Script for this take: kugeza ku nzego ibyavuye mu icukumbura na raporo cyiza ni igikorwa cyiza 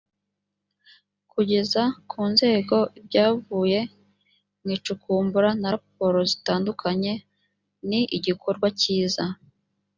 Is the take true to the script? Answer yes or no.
no